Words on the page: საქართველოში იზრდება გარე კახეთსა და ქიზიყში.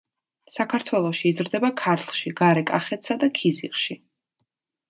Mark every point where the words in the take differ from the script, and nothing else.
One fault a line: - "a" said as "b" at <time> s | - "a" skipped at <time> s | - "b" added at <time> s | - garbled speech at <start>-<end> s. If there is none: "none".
- "ქართლში" added at 1.8 s